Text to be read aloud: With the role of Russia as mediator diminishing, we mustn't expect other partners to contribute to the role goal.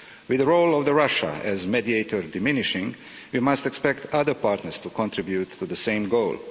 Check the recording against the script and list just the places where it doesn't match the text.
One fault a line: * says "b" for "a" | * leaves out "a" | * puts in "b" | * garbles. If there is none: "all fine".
* says "must" for "mustn't"
* says "same" for "role"